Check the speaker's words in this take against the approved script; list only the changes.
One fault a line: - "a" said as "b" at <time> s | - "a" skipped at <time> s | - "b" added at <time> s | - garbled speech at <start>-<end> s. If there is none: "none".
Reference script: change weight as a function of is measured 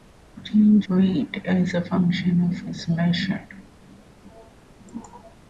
none